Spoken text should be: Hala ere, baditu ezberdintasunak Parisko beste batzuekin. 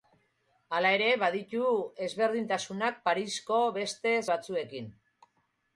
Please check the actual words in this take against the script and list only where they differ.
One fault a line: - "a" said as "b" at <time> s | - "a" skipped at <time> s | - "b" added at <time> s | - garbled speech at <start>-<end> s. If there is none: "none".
none